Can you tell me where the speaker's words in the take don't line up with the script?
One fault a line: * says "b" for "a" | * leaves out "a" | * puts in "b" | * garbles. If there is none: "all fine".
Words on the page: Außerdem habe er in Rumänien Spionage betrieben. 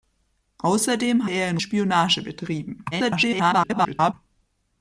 * leaves out "habe"
* leaves out "Rumänien"
* garbles